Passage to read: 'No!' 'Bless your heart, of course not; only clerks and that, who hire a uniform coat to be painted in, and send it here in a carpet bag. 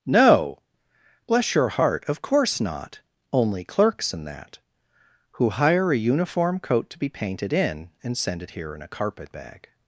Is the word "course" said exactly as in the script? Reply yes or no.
yes